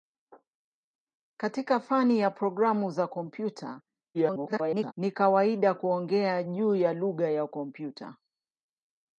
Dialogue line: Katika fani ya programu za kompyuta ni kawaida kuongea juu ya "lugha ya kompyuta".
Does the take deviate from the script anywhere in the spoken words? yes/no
yes